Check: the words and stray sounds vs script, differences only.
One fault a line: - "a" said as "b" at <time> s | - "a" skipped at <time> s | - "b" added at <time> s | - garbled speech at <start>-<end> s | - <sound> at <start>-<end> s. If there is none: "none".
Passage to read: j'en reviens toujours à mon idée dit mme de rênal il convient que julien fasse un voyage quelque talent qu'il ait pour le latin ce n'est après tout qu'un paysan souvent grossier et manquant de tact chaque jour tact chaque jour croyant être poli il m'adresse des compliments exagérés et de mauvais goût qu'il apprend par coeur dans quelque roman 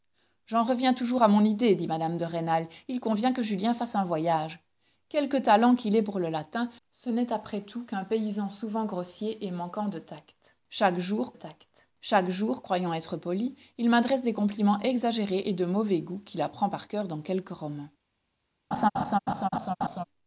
- laugh at 18.7-20.0 s